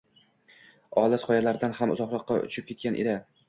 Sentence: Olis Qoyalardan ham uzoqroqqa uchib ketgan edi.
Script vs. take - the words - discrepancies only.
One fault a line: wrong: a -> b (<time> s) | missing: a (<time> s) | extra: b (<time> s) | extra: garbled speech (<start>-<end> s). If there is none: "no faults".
no faults